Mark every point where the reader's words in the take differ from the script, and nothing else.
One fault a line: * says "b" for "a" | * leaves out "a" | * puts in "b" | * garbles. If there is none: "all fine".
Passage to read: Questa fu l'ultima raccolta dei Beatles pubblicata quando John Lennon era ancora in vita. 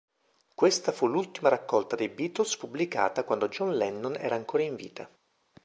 all fine